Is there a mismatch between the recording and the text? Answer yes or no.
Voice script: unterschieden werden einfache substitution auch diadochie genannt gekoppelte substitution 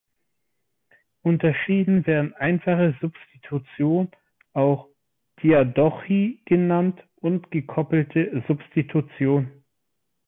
yes